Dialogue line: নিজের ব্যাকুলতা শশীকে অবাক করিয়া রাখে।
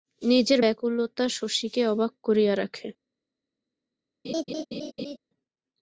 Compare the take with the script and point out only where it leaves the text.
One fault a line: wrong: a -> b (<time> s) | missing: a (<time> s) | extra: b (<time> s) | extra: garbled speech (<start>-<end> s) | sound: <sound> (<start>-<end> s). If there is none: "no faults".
sound: laugh (4.2-5.2 s)